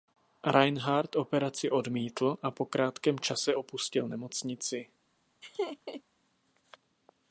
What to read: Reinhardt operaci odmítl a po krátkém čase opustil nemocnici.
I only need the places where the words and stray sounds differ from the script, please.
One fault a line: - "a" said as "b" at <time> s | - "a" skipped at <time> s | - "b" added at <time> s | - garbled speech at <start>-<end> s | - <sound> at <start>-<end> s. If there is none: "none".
- laugh at 5.4-6.0 s